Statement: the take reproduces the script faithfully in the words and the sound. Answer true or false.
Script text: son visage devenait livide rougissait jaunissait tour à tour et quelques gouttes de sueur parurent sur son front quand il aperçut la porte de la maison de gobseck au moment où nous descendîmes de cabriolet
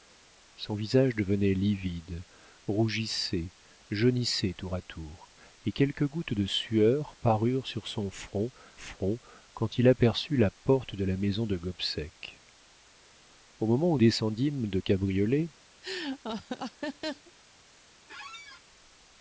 false